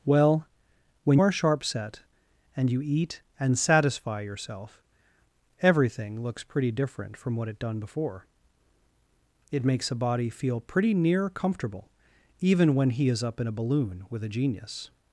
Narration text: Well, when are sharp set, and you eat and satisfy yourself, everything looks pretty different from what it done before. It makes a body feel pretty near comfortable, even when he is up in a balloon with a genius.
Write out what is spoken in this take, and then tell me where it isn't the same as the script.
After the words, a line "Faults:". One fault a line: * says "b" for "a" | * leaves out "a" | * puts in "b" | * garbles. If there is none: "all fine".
Well, when are sharp set, and you eat and satisfy yourself, everything looks pretty different from what it done before. It makes a body feel pretty near comfortable, even when he is up in a balloon with a genius.
Faults:
all fine